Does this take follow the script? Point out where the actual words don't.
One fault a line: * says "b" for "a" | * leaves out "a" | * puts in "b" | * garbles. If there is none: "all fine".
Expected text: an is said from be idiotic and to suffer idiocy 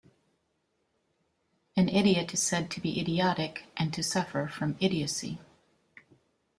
* puts in "idiot"
* says "to" for "from"
* puts in "from"